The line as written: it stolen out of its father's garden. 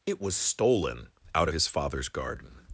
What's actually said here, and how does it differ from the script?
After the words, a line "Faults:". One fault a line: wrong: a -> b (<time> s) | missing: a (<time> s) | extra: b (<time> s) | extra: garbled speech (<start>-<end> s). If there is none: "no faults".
it was stolen out of his father's garden.
Faults:
extra: was (0.2 s)
wrong: its -> his (1.5 s)